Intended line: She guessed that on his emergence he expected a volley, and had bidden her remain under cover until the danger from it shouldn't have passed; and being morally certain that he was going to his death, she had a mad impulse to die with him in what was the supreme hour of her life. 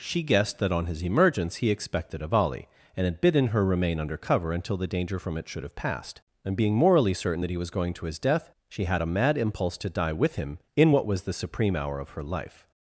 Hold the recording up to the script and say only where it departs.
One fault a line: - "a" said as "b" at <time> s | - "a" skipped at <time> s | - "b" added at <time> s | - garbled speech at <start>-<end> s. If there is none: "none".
- "shouldn't" said as "should" at 5.5 s